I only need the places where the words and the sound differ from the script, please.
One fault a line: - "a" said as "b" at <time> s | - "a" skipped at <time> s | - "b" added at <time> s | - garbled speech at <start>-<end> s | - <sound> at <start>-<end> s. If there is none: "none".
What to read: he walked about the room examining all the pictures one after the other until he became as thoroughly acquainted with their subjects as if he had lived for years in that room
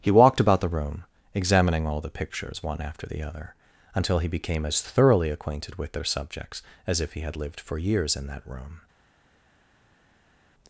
none